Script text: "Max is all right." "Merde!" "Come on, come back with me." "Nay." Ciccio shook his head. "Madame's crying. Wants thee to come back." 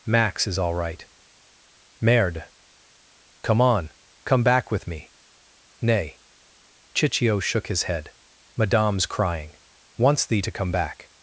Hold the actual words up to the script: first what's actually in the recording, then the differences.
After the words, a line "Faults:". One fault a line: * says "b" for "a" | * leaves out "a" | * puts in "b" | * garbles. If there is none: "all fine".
"Max is all right." "Merde!" "Come on, come back with me." "Nay." Ciccio shook his head. "Madame's crying. Wants thee to come back."
Faults:
all fine